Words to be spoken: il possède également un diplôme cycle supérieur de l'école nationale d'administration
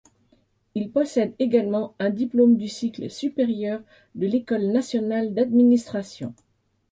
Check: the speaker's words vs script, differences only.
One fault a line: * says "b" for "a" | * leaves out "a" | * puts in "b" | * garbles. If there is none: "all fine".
* puts in "du"